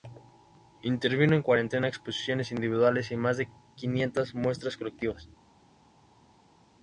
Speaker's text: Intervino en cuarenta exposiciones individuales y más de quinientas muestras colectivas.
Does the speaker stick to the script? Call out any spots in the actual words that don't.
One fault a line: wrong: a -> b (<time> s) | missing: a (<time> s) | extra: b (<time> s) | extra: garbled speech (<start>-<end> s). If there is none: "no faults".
no faults